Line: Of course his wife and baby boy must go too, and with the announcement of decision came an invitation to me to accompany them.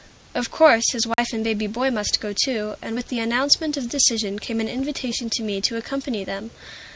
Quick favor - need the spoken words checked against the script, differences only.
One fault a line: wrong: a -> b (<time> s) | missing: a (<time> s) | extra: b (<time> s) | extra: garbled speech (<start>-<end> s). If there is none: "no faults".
no faults